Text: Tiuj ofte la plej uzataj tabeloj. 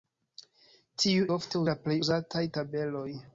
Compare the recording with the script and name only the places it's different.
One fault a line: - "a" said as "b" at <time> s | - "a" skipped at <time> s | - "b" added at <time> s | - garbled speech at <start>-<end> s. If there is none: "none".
none